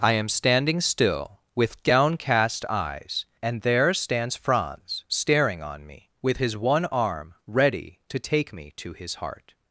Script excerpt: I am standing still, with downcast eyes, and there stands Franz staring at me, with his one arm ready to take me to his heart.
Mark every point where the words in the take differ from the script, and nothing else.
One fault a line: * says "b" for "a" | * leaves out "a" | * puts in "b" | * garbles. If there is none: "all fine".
* says "on" for "at"